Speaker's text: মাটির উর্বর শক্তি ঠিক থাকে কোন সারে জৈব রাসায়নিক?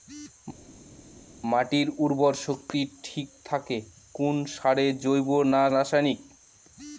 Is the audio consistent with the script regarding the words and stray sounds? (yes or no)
no